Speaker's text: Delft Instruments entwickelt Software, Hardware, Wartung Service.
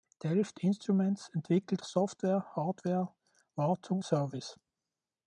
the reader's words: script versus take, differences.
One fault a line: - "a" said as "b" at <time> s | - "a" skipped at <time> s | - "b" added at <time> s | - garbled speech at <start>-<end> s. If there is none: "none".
none